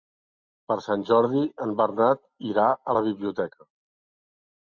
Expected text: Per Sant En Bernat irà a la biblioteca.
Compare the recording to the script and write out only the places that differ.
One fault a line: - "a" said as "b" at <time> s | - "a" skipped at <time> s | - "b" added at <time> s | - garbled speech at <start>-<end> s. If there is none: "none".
- "Jordi" added at 1.1 s